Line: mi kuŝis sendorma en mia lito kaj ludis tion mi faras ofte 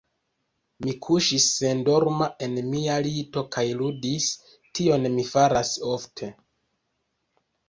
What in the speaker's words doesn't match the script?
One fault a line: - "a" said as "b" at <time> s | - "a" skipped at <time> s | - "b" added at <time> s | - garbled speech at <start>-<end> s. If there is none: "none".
none